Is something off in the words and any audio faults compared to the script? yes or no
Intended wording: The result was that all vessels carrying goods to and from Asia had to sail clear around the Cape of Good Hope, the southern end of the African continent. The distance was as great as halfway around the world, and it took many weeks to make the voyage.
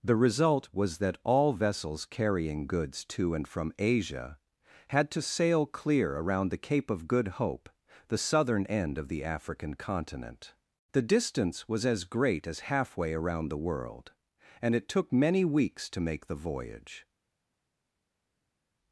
no